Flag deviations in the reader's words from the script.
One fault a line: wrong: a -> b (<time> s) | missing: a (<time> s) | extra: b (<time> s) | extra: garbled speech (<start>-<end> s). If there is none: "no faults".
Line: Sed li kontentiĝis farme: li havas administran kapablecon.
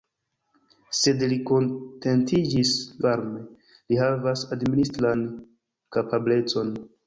no faults